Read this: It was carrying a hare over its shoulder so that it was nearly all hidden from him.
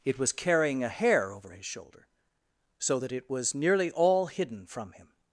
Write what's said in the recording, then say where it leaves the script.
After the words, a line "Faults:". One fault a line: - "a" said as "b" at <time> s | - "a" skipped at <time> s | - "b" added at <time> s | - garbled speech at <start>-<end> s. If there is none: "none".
It was carrying a hare over his shoulder so that it was nearly all hidden from him.
Faults:
- "its" said as "his" at 1.5 s